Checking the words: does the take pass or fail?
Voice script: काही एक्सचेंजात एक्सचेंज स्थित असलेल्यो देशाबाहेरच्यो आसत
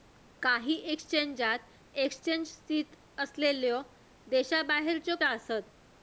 pass